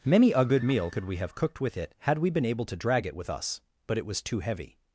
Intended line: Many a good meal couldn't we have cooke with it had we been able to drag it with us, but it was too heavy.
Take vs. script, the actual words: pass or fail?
fail